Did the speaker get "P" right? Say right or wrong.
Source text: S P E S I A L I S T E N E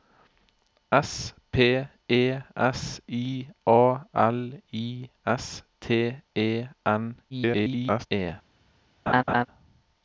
right